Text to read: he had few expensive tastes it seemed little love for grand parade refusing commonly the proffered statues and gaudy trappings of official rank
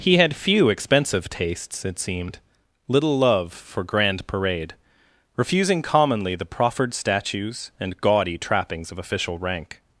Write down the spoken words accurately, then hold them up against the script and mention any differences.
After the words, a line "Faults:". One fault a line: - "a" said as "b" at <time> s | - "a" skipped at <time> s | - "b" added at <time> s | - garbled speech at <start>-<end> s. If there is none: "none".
he had few expensive tastes it seemed little love for grand parade refusing commonly the proffered statues and gaudy trappings of official rank
Faults:
none